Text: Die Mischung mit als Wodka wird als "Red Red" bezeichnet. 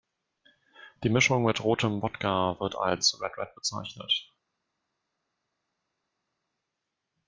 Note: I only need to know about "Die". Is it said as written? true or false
true